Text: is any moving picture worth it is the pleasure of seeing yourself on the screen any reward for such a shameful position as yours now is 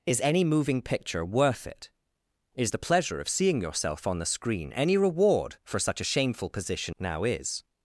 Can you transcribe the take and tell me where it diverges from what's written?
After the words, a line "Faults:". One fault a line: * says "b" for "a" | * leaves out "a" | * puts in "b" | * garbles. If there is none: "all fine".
is any moving picture worth it is the pleasure of seeing yourself on the screen any reward for such a shameful position now is
Faults:
* leaves out "as yours"